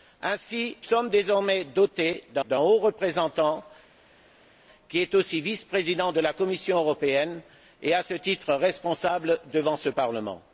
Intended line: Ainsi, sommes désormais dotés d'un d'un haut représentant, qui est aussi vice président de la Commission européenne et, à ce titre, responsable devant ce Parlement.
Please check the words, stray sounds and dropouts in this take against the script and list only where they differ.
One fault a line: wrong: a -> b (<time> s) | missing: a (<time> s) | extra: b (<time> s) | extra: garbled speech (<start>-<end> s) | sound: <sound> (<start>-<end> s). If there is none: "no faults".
no faults